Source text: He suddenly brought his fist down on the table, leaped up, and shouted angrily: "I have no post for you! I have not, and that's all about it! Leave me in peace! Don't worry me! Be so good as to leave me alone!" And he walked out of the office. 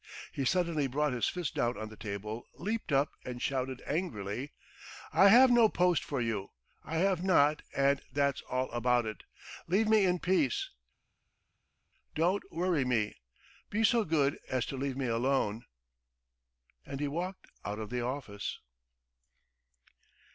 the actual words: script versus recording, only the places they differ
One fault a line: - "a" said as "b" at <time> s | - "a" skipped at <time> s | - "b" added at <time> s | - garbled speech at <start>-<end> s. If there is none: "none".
none